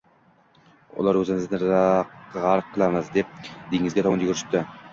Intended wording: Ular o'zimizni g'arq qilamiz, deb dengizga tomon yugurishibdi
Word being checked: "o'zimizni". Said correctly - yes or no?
yes